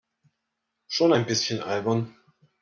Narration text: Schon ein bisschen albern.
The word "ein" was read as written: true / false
true